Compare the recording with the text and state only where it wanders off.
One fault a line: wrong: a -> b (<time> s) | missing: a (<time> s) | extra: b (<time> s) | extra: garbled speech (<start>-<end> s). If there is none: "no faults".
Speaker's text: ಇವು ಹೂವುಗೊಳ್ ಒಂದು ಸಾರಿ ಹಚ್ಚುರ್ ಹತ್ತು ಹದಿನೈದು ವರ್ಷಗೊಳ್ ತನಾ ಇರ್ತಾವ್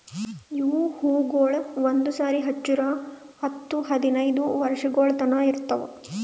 no faults